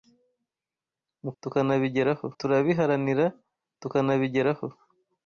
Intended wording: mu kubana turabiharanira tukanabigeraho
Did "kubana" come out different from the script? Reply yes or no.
yes